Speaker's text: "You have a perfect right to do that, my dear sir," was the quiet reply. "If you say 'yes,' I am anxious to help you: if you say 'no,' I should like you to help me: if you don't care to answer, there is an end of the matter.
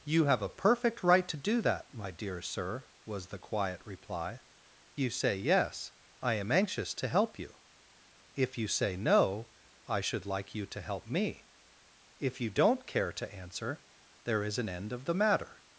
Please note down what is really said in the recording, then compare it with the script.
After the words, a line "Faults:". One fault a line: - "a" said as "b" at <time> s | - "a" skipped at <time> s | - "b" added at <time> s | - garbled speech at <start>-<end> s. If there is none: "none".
"You have a perfect right to do that, my dear sir," was the quiet reply. "You say 'yes,' I am anxious to help you: if you say 'no,' I should like you to help me: if you don't care to answer, there is an end of the matter.
Faults:
- "If" skipped at 4.4 s